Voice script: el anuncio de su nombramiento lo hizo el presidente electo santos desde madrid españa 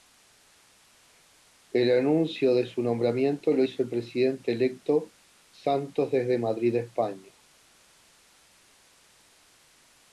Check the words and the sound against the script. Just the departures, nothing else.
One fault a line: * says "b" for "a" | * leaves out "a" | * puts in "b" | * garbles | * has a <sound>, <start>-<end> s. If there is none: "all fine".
all fine